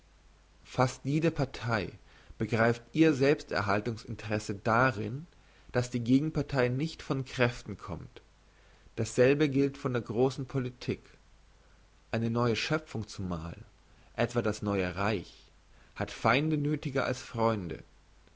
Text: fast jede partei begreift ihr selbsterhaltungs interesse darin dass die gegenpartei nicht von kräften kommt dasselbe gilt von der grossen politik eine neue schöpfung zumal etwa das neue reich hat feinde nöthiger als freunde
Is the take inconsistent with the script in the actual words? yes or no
no